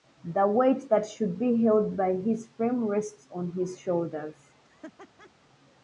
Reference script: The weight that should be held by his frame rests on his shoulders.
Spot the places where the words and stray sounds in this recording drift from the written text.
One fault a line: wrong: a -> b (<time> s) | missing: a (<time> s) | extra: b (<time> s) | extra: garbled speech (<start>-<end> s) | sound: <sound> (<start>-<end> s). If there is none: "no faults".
sound: laugh (4.6-5.3 s)